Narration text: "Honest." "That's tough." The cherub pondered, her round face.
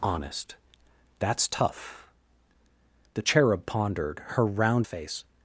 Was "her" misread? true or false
false